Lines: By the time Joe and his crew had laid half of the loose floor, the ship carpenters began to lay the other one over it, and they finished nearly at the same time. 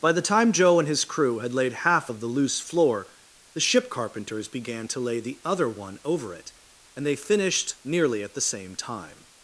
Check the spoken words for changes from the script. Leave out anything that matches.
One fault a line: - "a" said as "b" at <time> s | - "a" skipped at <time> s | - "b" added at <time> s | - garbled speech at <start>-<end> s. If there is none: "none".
none